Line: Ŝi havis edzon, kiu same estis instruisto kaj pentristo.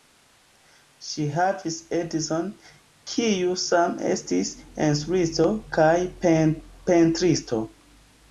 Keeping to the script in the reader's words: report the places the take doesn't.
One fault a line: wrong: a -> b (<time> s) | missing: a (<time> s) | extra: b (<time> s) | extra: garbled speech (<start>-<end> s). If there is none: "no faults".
no faults